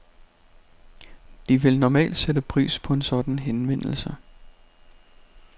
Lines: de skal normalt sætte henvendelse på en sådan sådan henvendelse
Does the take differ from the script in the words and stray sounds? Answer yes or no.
yes